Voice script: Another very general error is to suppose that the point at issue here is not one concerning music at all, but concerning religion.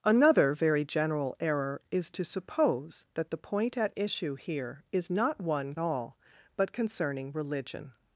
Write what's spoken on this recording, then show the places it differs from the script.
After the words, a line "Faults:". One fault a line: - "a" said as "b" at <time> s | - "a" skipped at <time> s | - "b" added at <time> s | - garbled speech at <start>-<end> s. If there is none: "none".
Another very general error is to suppose that the point at issue here is not one all, but concerning religion.
Faults:
- "concerning music at" skipped at 5.8 s